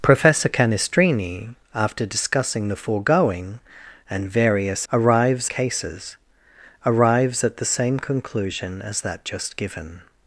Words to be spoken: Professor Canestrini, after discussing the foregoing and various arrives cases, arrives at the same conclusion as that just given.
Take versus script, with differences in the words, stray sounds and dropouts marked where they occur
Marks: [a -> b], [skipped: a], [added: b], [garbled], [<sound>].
Professor Canestrini, after discussing the foregoing and various arrives cases, arrives at the same conclusion as that just given.